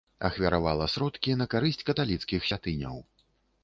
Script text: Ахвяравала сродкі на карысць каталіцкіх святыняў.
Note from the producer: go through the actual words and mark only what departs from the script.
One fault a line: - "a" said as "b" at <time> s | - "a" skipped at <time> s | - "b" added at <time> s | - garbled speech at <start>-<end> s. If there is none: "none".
none